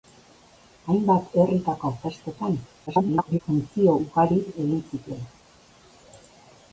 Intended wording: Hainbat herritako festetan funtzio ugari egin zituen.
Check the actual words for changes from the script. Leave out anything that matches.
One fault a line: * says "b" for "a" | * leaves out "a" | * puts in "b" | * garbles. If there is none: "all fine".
* garbles